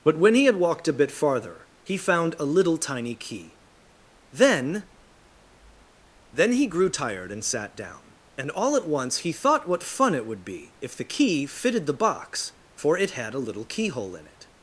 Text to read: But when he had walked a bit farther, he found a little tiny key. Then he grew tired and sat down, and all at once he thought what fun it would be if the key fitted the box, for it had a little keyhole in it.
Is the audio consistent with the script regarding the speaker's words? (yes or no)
no